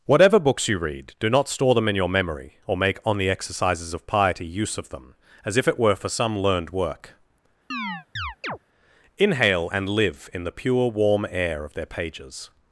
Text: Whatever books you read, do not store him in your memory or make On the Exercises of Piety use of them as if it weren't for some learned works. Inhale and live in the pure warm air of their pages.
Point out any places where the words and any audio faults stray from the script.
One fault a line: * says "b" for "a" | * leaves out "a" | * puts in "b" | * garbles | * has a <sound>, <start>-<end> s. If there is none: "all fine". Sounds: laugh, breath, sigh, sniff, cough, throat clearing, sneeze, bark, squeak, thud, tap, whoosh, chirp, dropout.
* says "them" for "him"
* says "were" for "weren't"
* says "work" for "works"
* has a chirp, 7.7-8.6 s